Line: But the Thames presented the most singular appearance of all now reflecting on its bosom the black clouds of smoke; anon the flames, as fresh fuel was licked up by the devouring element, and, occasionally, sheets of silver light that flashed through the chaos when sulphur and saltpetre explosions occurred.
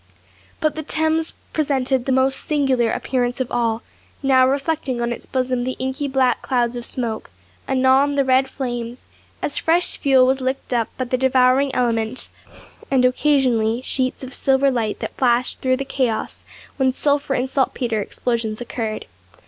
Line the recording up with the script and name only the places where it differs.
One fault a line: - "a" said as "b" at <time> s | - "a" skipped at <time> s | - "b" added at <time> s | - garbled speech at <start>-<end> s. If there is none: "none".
- "inky" added at 5.8 s
- "red" added at 8.2 s